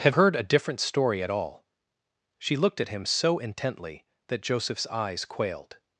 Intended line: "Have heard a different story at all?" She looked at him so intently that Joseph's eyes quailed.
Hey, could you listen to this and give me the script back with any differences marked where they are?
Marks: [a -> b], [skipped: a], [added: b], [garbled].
"Have heard a different story at all?" She looked at him so intently that Joseph's eyes quailed.